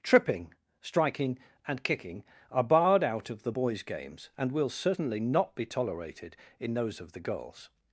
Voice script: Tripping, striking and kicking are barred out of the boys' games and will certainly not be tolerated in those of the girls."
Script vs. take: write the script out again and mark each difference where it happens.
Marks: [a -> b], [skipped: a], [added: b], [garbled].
Tripping, striking and kicking are barred out of the boys' games and will certainly not be tolerated in those of the girls."